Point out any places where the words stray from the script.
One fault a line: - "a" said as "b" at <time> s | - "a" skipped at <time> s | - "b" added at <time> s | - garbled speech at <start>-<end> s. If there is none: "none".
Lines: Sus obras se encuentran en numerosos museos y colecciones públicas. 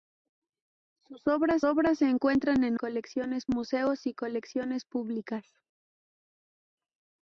- "obras" added at 1.6 s
- "numerosos" said as "colecciones" at 2.7 s